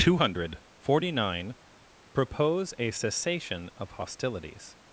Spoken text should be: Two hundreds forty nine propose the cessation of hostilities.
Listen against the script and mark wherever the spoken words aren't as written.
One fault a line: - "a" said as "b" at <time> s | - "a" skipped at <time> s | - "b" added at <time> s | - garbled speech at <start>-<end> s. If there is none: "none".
- "hundreds" said as "hundred" at 0.1 s
- "the" said as "a" at 2.8 s